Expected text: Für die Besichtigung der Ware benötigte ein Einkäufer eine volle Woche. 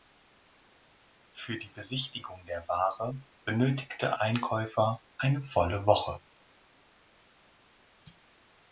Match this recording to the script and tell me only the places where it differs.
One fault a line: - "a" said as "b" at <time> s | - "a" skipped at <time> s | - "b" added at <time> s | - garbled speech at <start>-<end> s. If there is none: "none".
- "ein" skipped at 4.2 s